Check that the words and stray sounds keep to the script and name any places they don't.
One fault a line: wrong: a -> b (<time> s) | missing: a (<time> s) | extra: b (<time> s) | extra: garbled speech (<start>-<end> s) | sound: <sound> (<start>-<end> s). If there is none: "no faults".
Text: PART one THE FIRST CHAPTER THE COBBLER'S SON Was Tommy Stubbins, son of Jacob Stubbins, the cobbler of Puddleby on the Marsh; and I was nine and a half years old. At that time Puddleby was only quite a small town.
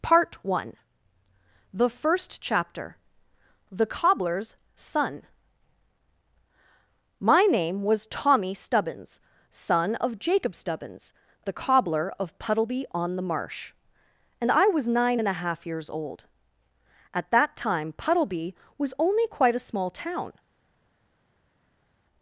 extra: MY name (7.2 s)